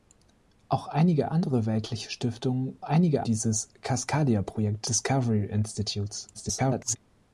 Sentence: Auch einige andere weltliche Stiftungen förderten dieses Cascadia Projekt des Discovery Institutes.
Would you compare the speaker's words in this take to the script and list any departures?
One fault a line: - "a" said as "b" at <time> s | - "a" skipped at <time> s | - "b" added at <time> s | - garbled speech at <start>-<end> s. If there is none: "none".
- "förderten" said as "einige" at 2.8 s
- "des" skipped at 4.9 s
- garbled speech at 6.3-7.0 s